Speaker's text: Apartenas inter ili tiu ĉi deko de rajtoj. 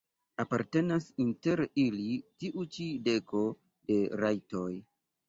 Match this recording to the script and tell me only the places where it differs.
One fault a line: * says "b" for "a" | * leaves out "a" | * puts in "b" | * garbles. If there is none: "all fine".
all fine